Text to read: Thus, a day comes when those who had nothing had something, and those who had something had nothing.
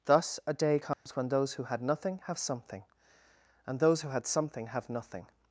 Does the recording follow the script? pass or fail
fail